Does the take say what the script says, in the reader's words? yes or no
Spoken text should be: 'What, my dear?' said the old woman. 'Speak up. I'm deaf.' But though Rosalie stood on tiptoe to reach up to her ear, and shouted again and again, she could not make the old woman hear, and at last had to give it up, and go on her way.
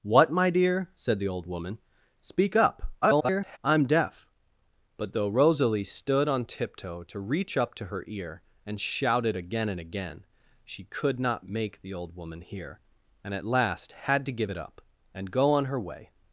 no